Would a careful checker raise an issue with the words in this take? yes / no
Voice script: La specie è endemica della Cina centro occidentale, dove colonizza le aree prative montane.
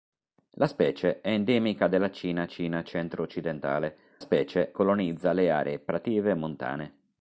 yes